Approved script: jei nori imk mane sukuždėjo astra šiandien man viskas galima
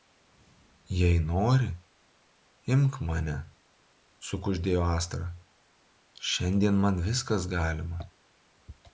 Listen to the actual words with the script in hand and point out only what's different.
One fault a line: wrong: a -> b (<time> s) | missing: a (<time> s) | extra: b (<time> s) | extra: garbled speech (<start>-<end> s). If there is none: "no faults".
no faults